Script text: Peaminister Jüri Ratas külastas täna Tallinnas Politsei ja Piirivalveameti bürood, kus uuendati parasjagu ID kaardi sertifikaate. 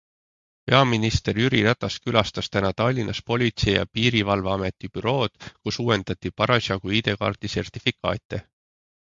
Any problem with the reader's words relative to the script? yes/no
no